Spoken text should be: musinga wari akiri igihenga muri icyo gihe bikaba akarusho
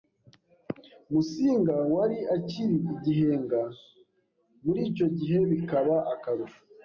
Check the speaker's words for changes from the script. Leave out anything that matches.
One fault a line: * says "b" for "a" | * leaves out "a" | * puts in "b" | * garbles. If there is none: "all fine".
all fine